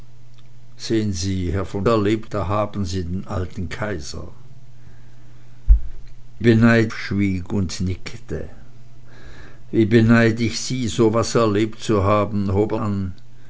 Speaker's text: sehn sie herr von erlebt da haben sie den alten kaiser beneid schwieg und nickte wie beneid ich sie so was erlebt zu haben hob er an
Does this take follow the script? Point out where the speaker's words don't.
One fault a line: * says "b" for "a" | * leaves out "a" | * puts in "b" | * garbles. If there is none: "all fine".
all fine